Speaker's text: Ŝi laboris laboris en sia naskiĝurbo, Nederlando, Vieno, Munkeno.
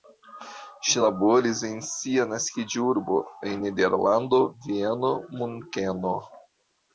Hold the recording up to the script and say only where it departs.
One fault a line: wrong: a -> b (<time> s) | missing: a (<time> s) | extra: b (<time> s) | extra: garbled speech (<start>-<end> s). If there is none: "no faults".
missing: laboris (1.6 s)
extra: en (3.5 s)